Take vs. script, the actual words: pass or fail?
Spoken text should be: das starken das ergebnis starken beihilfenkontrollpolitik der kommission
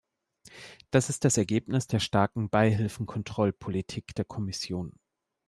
fail